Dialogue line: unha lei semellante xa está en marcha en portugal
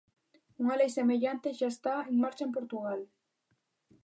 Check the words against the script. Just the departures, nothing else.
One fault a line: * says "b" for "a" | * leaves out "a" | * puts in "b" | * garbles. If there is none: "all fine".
all fine